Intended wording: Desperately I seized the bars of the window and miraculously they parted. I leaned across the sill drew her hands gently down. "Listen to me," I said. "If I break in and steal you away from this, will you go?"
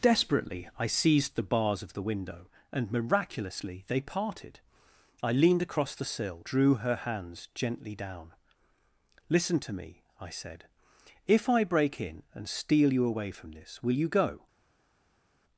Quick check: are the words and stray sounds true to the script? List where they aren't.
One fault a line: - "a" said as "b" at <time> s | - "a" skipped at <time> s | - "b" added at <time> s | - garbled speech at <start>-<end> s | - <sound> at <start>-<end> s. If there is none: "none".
none